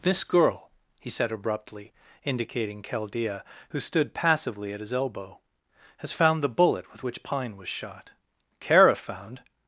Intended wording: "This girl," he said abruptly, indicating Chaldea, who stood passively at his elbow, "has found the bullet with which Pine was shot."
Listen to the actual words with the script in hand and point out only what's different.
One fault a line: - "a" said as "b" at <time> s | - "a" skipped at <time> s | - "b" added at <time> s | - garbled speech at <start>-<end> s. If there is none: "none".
- "Kara found" added at 8.6 s